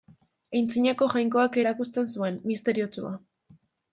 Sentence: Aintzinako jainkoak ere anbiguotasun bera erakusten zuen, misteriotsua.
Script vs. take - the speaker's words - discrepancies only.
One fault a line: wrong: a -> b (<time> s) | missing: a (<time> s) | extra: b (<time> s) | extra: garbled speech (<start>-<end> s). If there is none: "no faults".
missing: ere anbiguotasun bera (1.6 s)